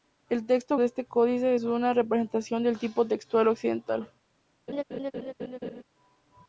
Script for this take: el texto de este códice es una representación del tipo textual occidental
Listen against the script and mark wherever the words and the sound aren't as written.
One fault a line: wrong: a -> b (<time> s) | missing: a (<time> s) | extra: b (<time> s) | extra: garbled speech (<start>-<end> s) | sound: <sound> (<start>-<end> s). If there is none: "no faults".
sound: laugh (4.7-5.8 s)